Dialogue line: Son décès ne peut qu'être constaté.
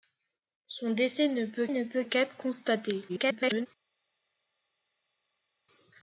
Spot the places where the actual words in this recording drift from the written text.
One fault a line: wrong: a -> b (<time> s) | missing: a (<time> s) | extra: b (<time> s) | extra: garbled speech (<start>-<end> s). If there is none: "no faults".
extra: ne peut (1.7 s)
extra: garbled speech (3.1-3.7 s)